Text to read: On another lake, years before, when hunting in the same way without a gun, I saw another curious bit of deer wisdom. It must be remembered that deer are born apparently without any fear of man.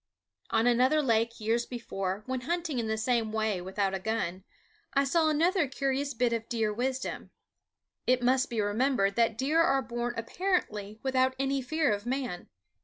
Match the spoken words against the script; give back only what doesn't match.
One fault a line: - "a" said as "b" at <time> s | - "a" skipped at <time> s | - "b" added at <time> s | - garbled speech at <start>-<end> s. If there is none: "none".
none